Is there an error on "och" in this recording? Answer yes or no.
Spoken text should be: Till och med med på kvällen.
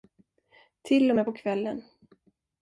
no